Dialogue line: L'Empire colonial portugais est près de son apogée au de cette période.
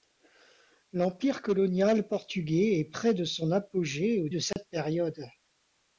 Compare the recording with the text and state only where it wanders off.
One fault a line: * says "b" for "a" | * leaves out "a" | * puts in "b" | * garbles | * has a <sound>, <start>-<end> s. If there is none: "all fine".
* has a dropout, 4.5-4.6 s